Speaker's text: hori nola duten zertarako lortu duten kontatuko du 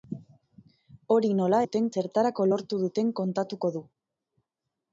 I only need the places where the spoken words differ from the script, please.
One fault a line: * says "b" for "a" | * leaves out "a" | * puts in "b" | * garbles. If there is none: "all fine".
all fine